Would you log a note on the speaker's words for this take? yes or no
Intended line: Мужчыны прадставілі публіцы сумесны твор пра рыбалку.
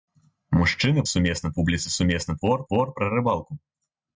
yes